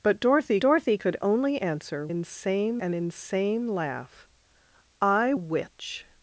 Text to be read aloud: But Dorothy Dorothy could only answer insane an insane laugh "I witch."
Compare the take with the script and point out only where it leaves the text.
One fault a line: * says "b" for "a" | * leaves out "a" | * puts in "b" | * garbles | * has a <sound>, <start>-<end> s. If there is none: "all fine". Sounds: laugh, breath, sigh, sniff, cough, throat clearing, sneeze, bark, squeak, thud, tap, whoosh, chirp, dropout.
all fine